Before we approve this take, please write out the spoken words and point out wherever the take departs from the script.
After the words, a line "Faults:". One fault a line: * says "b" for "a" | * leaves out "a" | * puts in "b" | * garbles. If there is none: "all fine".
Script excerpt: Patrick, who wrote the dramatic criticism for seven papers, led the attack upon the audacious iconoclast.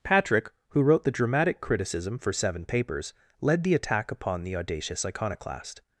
Patrick, who wrote the dramatic criticism for seven papers, led the attack upon the audacious iconoclast.
Faults:
all fine